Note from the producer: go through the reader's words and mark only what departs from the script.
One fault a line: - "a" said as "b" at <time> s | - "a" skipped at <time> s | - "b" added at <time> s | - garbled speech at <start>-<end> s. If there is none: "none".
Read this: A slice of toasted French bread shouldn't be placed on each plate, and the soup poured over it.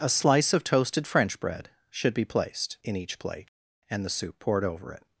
- "shouldn't" said as "should" at 1.9 s
- "on" said as "in" at 2.8 s